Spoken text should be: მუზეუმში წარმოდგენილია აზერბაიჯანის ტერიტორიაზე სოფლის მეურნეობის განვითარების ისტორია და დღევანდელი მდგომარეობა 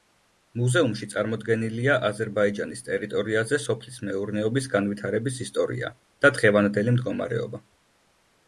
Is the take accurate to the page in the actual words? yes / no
yes